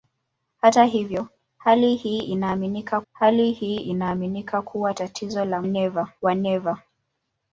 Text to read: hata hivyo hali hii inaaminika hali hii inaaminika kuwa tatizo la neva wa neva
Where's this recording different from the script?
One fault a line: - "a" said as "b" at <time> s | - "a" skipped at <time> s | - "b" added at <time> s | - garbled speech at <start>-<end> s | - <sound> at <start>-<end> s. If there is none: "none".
none